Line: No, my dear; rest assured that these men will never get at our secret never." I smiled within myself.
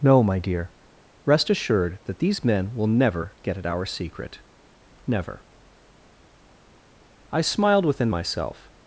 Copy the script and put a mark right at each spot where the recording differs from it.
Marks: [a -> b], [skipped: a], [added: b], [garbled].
No, my dear; rest assured that these men will never get at our secret never." I smiled within myself.